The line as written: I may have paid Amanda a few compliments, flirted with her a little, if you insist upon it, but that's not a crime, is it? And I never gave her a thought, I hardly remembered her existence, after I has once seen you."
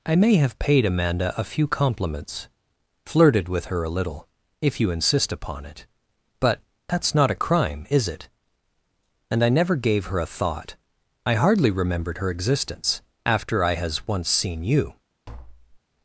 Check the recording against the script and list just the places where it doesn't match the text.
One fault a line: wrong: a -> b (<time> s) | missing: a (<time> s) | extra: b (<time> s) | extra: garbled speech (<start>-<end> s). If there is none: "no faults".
no faults